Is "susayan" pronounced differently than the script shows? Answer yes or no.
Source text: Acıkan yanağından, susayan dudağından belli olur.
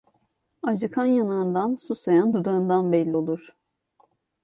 no